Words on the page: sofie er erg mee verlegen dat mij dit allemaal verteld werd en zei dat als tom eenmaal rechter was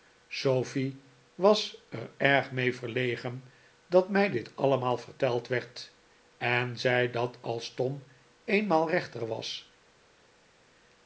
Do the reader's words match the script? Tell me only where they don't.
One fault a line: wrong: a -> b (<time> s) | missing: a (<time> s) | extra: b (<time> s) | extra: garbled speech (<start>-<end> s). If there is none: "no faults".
extra: was (1.4 s)